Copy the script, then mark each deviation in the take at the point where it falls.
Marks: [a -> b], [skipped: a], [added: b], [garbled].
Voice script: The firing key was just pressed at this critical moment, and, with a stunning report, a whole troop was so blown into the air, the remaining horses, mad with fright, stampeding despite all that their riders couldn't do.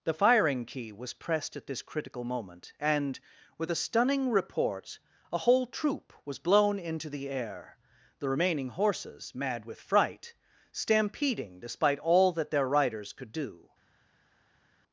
The firing key was [skipped: just] pressed at this critical moment, and, with a stunning report, a whole troop was [skipped: so] blown into the air, the remaining horses, mad with fright, stampeding despite all that their riders [couldn't -> could] do.